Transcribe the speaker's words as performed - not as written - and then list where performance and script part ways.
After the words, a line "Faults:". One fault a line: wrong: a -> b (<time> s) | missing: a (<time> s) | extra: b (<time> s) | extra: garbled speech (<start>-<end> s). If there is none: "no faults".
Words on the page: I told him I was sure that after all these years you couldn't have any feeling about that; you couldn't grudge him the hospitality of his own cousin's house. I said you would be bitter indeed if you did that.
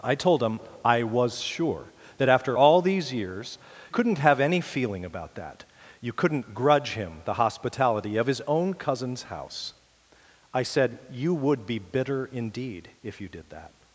I told him I was sure that after all these years couldn't have any feeling about that; you couldn't grudge him the hospitality of his own cousin's house. I said you would be bitter indeed if you did that.
Faults:
missing: you (3.6 s)